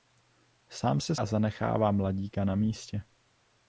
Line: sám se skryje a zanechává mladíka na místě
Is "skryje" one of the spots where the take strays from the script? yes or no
yes